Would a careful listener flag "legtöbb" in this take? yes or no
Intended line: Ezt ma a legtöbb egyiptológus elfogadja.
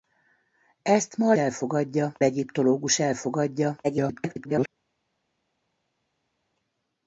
yes